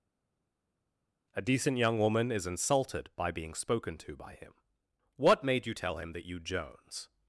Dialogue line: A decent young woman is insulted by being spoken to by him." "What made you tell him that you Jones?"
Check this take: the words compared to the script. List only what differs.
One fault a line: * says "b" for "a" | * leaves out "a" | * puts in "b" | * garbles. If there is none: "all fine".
all fine